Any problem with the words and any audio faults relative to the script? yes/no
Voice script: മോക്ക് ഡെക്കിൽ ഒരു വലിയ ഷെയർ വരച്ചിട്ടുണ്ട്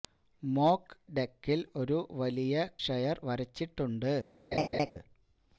yes